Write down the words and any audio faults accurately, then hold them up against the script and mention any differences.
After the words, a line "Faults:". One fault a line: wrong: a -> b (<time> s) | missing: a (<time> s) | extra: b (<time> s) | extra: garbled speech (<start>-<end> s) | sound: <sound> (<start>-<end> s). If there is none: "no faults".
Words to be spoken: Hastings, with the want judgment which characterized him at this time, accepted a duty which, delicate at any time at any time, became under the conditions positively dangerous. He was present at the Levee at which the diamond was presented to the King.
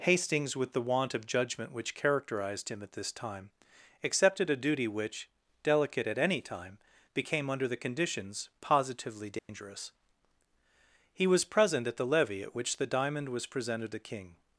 Hastings, with the want of judgment which characterized him at this time, accepted a duty which, delicate at any time, became under the conditions positively dangerous. He was present at the Levee at which the diamond was presented to the King.
Faults:
extra: of (1.1 s)
missing: at any time (6.8 s)
sound: dropout (9.4-9.5 s)